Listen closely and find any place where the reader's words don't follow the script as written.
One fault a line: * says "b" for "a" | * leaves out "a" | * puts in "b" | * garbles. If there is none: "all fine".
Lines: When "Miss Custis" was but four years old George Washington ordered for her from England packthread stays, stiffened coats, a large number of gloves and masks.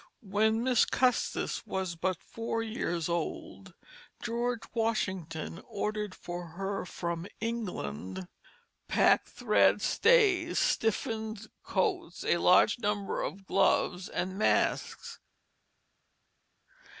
all fine